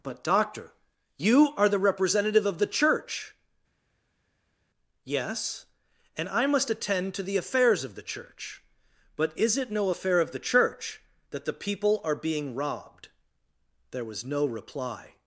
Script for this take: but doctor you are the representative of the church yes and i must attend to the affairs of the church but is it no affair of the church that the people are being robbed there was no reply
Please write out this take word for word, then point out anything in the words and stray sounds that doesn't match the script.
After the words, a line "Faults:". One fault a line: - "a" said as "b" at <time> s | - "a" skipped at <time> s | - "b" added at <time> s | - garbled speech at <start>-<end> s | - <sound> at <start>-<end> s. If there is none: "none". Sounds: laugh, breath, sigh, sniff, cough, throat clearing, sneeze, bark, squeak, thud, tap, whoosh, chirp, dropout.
but doctor you are the representative of the church yes and i must attend to the affairs of the church but is it no affair of the church that the people are being robbed there was no reply
Faults:
none